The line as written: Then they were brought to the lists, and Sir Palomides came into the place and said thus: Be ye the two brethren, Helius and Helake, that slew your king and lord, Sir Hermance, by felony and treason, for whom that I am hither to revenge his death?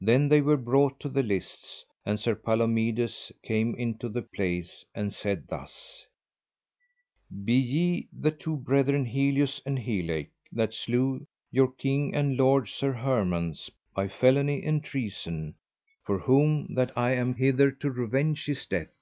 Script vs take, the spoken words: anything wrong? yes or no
no